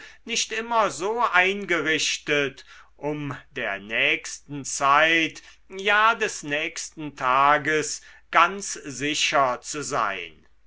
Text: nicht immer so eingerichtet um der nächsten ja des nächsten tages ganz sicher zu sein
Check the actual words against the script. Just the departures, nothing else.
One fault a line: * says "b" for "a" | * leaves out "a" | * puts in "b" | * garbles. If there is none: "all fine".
* puts in "zeit"